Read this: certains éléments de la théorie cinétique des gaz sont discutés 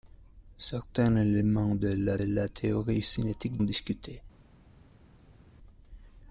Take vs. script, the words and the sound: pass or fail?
fail